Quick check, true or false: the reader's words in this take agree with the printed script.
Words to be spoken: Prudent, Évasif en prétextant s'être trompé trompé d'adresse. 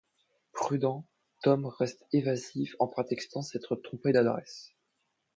false